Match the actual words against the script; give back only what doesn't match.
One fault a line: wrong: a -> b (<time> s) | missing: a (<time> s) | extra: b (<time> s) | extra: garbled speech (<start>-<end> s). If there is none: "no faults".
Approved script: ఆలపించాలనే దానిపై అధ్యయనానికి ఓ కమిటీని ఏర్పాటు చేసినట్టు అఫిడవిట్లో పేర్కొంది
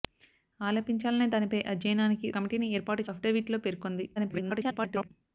missing: ఓ (2.3 s)
missing: చేసినట్టు (3.0 s)
extra: garbled speech (4.2-5.1 s)